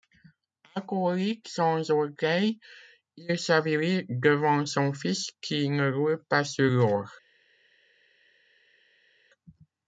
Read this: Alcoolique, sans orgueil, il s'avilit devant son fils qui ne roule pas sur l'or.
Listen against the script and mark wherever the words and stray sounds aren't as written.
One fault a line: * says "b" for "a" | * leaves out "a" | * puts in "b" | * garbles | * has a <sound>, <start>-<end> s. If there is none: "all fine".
all fine